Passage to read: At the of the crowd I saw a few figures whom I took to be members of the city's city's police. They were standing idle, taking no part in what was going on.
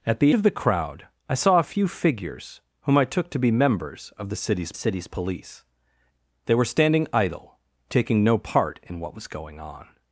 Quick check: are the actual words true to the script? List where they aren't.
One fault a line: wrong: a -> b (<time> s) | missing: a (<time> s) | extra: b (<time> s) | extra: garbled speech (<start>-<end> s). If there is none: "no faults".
no faults